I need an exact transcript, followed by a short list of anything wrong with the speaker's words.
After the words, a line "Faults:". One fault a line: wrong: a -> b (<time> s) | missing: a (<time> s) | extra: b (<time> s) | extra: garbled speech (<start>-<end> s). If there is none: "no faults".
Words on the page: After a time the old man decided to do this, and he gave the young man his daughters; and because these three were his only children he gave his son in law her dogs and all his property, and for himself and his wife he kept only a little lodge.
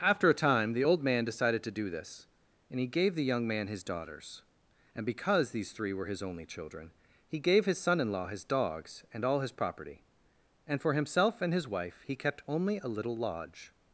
After a time the old man decided to do this, and he gave the young man his daughters; and because these three were his only children he gave his son in law his dogs and all his property, and for himself and his wife he kept only a little lodge.
Faults:
wrong: her -> his (8.3 s)